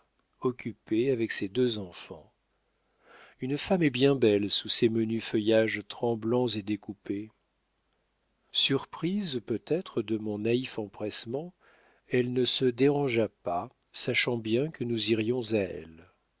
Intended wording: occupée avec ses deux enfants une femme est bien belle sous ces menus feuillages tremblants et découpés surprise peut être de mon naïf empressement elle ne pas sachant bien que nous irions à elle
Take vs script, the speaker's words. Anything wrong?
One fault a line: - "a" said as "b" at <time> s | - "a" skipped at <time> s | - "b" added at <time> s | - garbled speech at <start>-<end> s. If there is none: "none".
- "se dérangea" added at 12.4 s